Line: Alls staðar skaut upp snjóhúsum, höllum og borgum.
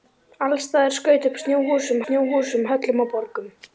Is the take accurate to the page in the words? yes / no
no